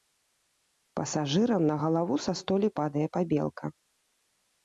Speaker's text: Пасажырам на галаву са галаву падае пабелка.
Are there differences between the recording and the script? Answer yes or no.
yes